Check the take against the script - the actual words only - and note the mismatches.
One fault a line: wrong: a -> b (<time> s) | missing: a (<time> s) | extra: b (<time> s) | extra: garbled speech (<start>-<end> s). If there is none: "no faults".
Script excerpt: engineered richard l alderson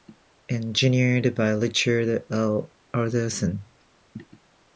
extra: by (1.4 s)